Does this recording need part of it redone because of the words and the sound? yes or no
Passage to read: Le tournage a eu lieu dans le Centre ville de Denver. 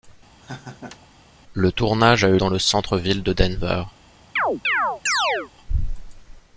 yes